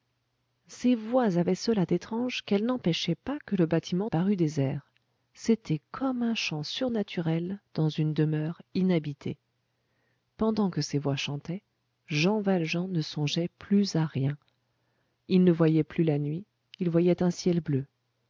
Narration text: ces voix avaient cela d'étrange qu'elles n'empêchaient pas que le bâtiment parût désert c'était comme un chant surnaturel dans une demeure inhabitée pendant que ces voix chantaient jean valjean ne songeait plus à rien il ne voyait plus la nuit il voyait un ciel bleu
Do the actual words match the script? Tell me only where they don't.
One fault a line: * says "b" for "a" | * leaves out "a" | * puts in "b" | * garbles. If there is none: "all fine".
all fine